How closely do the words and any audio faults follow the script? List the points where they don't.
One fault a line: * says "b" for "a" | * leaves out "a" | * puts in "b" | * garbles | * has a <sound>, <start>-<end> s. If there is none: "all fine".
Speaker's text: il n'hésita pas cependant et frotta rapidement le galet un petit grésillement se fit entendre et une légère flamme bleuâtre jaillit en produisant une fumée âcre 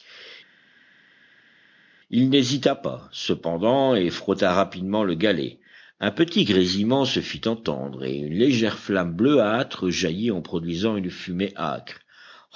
all fine